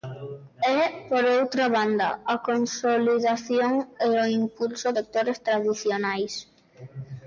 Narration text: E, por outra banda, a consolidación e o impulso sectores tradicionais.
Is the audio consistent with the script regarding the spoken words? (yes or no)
yes